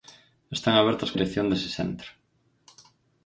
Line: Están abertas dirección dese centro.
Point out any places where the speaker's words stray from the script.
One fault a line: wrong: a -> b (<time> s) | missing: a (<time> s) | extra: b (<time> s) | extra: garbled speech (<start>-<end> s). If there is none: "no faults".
no faults